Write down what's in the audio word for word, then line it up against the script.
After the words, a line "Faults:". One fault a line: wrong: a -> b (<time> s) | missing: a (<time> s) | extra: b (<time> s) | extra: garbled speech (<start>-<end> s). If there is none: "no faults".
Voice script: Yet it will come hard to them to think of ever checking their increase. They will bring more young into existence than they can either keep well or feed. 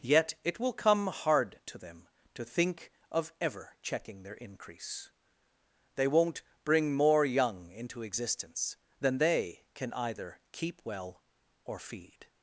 Yet it will come hard to them to think of ever checking their increase. They won't bring more young into existence than they can either keep well or feed.
Faults:
wrong: will -> won't (6.1 s)